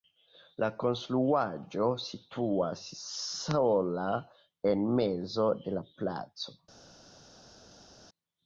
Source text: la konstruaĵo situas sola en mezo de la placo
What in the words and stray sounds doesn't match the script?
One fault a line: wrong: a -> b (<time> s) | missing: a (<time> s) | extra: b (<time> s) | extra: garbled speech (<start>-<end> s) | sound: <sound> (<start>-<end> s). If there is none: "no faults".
no faults